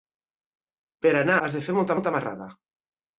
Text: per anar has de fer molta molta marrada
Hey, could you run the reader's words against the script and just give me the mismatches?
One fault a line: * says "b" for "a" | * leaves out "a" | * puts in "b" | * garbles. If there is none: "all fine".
all fine